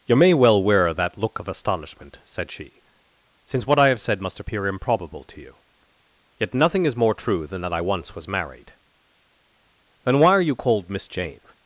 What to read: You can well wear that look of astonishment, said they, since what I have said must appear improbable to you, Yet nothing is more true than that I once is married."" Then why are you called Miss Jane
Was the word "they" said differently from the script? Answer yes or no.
yes